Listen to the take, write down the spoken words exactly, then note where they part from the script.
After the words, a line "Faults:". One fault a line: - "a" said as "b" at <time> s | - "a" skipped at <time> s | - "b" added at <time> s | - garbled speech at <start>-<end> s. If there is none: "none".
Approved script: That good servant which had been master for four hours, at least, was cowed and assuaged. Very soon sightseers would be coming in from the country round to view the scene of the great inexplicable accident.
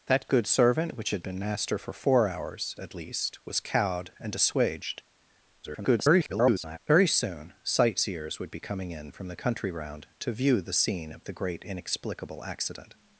That good servant which had been master for four hours, at least, was cowed and assuaged. [garbled] Very soon sightseers would be coming in from the country round to view the scene of the great inexplicable accident.
Faults:
- garbled speech at 5.6-6.8 s